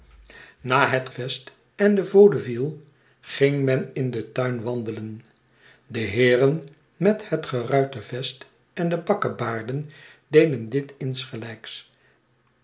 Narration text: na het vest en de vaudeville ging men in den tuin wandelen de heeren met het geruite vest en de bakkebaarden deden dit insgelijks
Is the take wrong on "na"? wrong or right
right